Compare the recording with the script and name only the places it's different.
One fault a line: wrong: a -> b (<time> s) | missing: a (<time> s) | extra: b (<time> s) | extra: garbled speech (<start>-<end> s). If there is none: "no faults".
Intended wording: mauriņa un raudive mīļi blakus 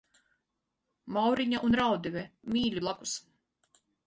no faults